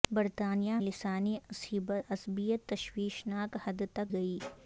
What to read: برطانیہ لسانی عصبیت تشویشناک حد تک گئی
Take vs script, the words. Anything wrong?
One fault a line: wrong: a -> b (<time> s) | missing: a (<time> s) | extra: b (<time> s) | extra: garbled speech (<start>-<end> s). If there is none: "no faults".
no faults